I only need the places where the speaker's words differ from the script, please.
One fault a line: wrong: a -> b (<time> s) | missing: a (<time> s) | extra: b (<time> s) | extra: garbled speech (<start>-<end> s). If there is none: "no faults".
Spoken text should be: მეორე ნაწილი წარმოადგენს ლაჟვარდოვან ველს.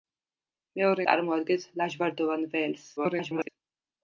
missing: ნაწილი (1.1 s)
extra: garbled speech (3.0-3.5 s)